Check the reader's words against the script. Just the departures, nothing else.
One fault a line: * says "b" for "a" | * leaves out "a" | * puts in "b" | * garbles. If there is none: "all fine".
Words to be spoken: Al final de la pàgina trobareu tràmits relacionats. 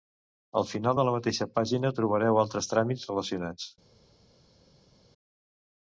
* puts in "mateixa"
* puts in "altres"